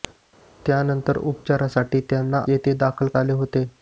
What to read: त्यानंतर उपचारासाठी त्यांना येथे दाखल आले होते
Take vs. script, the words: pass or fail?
pass